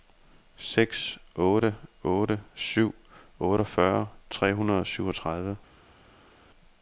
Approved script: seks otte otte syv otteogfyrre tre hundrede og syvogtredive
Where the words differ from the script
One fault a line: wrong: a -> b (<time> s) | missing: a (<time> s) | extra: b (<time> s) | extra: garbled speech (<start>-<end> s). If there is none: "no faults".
no faults